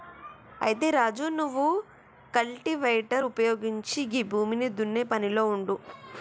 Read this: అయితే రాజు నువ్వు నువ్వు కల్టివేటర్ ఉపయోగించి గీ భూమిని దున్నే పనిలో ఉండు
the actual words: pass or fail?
fail